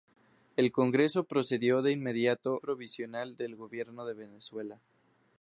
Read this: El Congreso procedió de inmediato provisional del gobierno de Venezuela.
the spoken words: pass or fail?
pass